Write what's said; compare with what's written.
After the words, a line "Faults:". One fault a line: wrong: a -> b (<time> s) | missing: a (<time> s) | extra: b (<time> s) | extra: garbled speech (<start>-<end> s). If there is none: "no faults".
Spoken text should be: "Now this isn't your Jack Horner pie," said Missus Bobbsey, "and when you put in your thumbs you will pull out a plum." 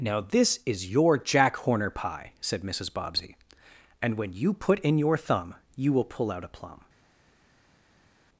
"Now this is your Jack Horner pie," said Missus Bobbsey, "and when you put in your thumb you will pull out a plum."
Faults:
wrong: isn't -> is (0.7 s)
wrong: thumbs -> thumb (5.2 s)